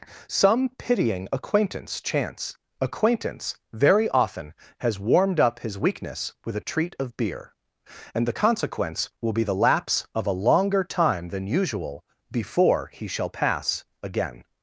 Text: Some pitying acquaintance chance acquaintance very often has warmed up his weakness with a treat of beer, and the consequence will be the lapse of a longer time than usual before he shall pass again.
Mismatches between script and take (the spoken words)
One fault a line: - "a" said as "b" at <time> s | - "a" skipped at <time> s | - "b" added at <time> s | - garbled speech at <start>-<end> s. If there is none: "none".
none